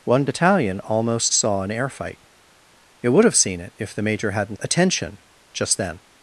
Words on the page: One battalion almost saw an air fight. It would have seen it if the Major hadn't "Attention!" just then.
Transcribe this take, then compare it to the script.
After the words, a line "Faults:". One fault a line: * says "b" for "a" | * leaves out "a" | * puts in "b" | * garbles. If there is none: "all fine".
One battalion almost saw an air fight. It would have seen it if the Major hadn't "Attention!" just then.
Faults:
all fine